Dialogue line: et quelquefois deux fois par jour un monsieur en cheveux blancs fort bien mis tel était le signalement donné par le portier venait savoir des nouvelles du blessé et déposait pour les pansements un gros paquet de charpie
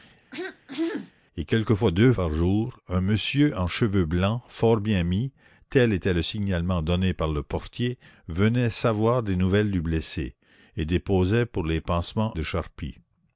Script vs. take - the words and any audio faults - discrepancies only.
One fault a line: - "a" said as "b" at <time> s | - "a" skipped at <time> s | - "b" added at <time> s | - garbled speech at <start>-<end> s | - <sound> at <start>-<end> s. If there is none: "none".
- throat clearing at 0.3-1.1 s
- "fois" skipped at 2.1 s
- "un gros paquet" skipped at 12.3 s